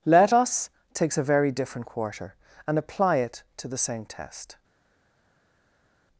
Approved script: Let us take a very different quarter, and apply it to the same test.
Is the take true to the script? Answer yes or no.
no